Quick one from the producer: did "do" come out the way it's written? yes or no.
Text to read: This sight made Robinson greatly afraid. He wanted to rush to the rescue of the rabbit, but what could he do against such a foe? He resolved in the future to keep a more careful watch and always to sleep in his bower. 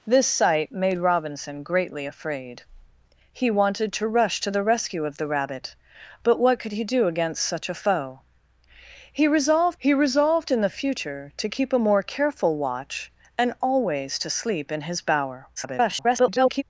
yes